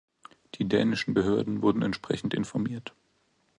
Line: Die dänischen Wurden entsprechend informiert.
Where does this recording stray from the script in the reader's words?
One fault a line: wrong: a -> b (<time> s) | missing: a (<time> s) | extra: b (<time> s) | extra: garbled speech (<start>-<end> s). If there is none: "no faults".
extra: Behörden (1.1 s)